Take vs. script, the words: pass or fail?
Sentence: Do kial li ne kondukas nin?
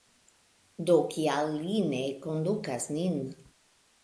pass